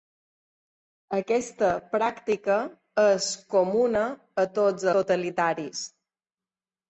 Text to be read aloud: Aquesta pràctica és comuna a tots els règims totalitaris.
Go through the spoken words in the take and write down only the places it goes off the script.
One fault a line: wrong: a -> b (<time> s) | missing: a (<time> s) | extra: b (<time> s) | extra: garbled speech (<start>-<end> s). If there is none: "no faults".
missing: els règims (4.9 s)